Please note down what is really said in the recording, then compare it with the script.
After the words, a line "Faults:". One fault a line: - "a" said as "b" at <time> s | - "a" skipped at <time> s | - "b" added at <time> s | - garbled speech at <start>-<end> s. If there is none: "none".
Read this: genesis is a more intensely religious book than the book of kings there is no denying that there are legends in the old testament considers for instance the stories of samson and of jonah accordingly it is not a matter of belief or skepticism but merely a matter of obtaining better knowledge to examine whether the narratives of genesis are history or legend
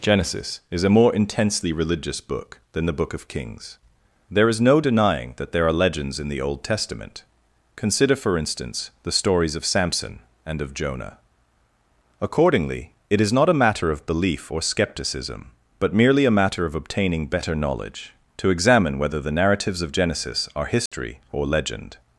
genesis is a more intensely religious book than the book of kings there is no denying that there are legends in the old testament consider for instance the stories of samson and of jonah accordingly it is not a matter of belief or skepticism but merely a matter of obtaining better knowledge to examine whether the narratives of genesis are history or legend
Faults:
- "considers" said as "consider" at 7.8 s